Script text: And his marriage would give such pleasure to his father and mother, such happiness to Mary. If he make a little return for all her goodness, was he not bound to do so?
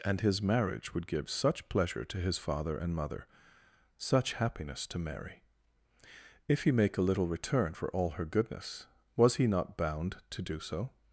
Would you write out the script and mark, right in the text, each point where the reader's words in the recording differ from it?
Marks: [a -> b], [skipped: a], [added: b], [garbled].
And his marriage would give such pleasure to his father and mother, such happiness to Mary. If he make a little return for all her goodness, was he not bound to do so?